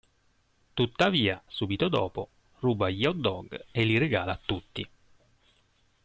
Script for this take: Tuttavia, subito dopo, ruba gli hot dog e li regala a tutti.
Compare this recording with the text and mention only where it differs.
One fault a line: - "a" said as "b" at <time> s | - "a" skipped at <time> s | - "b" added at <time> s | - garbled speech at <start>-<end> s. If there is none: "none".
none